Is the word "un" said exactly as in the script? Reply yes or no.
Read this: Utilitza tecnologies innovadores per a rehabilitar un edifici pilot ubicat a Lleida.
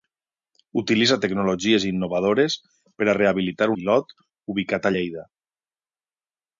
no